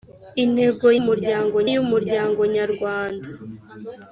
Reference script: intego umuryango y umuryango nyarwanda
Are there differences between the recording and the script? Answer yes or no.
no